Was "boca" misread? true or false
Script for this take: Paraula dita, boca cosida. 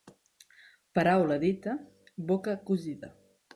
false